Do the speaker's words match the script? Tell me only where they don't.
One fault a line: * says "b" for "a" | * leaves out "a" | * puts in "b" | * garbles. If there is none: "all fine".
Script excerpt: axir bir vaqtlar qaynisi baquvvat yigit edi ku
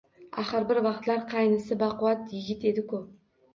all fine